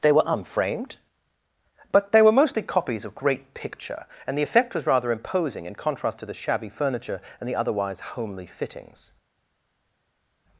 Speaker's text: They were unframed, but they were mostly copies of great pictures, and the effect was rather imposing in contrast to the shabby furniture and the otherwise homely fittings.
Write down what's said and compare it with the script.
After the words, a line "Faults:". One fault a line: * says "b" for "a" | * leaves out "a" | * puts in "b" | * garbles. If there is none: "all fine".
They were unframed, but they were mostly copies of great picture, and the effect was rather imposing in contrast to the shabby furniture and the otherwise homely fittings.
Faults:
* says "picture" for "pictures"